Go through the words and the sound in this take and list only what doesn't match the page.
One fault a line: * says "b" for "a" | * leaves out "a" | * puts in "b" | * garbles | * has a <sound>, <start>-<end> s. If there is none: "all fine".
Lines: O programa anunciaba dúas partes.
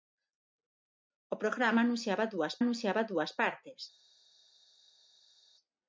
* puts in "anunciaba dúas"